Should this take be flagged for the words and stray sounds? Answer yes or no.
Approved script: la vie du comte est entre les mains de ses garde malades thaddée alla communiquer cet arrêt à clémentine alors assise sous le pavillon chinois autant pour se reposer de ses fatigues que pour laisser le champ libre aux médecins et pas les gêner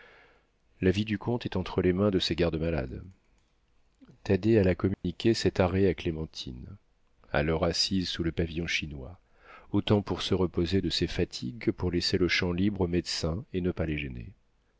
yes